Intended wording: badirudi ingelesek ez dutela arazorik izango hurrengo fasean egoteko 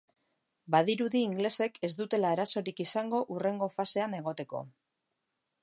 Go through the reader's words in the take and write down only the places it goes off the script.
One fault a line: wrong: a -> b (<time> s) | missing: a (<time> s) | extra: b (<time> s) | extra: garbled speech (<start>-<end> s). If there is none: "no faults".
no faults